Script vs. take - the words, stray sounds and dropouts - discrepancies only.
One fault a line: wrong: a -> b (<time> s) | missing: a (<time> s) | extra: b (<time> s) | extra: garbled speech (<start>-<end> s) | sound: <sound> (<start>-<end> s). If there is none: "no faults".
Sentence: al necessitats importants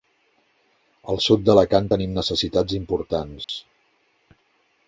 extra: sud d'alacant tenim (1.2 s)
sound: dropout (3.4-3.5 s)